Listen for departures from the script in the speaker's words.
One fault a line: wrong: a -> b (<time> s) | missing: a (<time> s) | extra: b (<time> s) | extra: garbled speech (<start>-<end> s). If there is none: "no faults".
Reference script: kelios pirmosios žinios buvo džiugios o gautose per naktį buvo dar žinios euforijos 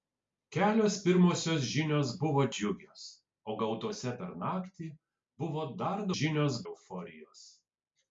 no faults